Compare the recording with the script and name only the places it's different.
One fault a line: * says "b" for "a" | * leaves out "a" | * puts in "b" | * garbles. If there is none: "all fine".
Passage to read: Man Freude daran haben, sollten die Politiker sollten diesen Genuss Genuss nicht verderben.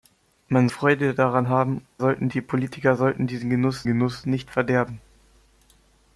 all fine